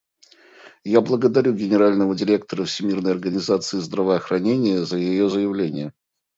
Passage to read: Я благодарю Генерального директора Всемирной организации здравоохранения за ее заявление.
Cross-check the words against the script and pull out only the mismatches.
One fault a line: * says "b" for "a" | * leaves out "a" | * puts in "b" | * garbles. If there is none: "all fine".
all fine